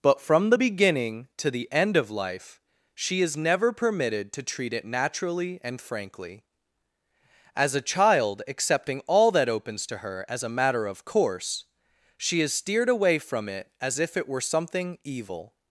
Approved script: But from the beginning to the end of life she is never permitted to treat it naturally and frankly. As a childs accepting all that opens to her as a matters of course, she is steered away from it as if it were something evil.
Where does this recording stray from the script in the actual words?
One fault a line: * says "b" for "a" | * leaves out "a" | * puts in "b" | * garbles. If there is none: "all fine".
* says "child" for "childs"
* says "matter" for "matters"